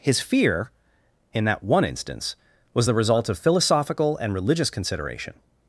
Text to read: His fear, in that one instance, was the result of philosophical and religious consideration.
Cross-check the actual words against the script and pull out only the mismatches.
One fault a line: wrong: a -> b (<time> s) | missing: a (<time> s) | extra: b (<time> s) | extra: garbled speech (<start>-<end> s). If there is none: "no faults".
no faults